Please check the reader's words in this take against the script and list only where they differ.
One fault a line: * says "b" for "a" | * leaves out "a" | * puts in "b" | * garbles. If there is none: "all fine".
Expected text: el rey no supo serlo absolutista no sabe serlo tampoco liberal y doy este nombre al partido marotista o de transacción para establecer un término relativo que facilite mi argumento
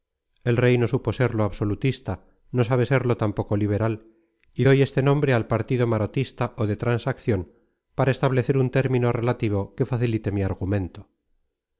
all fine